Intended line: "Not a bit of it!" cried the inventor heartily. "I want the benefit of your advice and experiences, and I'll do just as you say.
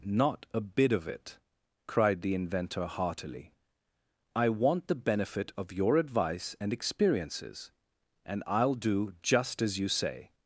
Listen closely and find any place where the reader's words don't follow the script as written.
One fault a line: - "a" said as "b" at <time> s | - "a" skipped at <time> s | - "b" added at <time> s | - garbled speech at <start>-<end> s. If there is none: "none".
none